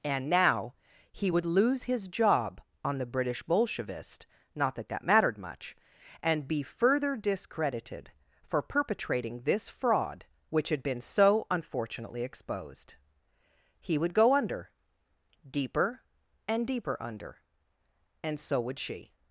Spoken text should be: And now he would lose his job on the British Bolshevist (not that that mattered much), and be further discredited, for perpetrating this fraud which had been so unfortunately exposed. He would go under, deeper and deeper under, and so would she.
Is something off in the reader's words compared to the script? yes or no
no